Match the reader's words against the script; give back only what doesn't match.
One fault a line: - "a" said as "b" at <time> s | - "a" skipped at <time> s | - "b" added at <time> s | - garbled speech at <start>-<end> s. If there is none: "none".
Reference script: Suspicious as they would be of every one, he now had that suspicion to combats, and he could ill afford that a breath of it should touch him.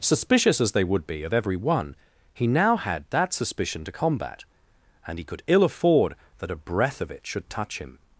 - "combats" said as "combat" at 3.9 s